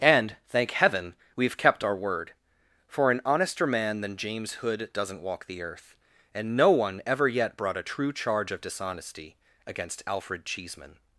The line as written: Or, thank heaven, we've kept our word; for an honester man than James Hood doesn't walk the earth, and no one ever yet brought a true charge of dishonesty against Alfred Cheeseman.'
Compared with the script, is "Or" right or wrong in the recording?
wrong